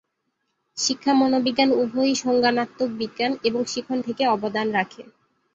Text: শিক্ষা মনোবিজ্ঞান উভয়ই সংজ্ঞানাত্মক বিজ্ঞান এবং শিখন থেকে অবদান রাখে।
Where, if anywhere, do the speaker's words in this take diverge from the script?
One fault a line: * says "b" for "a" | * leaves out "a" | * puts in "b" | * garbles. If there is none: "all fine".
all fine